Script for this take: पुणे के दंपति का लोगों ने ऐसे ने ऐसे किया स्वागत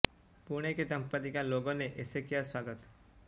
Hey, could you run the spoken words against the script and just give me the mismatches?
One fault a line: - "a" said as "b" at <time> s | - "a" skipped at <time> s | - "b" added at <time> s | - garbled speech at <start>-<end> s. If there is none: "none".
- "ने ऐसे" skipped at 2.2 s